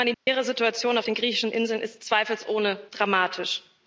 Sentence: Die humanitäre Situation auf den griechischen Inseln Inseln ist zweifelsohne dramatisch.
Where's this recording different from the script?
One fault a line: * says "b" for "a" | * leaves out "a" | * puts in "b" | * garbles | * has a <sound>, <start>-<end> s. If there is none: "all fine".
* has a dropout, 0.1-0.3 s
* leaves out "Inseln"